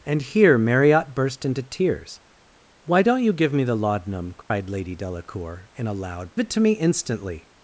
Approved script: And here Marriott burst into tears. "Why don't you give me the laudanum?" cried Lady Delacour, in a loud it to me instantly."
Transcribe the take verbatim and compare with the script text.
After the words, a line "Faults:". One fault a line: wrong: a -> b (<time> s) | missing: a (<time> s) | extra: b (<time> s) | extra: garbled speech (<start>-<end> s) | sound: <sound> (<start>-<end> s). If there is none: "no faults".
And here Marriott burst into tears. "Why don't you give me the laudanum?" cried Lady Delacour, in a loud it to me instantly."
Faults:
sound: dropout (4.4-4.5 s)